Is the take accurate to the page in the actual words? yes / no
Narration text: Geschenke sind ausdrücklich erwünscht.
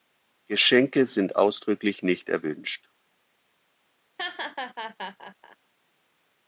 no